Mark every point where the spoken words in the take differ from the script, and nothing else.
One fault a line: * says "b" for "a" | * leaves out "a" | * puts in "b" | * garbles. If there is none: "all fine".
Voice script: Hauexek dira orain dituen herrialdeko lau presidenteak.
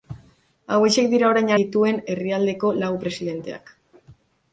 all fine